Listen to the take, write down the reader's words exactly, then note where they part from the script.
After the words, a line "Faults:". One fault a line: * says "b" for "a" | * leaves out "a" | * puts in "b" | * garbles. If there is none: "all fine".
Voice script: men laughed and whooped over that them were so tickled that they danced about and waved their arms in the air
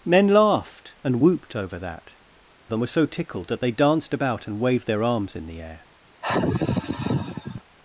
men laughed and whooped over that them were so tickled that they danced about and waved their arms in the air
Faults:
all fine